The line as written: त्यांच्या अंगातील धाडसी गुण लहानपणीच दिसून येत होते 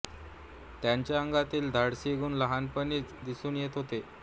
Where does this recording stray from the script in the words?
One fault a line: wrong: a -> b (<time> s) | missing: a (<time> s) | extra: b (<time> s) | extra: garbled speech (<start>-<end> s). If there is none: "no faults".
no faults